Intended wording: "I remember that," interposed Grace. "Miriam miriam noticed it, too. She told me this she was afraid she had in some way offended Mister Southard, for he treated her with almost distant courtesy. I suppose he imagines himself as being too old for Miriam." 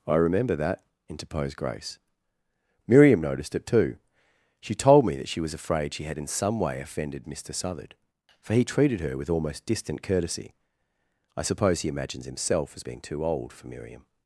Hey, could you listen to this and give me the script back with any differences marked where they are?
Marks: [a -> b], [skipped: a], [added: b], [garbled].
"I remember that," interposed Grace. "Miriam [skipped: miriam] noticed it, too. She told me [this -> that] she was afraid she had in some way offended Mister Southard, for he treated her with almost distant courtesy. I suppose he imagines himself as being too old for Miriam."